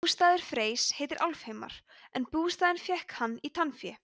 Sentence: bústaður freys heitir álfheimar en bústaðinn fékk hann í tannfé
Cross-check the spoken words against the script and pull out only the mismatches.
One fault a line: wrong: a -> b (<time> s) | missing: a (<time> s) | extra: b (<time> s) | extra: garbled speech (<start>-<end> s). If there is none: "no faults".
no faults